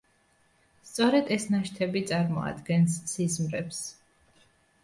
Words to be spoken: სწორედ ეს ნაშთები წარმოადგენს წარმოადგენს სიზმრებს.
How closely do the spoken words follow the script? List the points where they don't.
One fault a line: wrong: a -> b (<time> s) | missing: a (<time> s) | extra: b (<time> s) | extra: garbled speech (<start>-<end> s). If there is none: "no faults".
missing: წარმოადგენს (3.0 s)